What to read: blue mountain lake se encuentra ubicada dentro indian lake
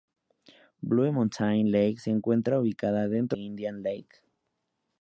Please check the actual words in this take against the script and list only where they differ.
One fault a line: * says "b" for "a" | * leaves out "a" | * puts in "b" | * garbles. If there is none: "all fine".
all fine